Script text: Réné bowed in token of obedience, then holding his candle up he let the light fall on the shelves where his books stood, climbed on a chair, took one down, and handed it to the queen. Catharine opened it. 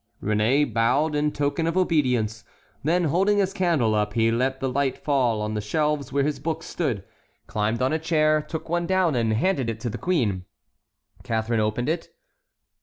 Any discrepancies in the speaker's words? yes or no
no